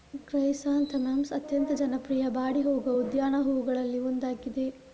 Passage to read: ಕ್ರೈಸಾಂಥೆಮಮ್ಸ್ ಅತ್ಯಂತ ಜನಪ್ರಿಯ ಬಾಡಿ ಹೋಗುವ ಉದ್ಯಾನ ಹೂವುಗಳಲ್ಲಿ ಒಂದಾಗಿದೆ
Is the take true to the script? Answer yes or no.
yes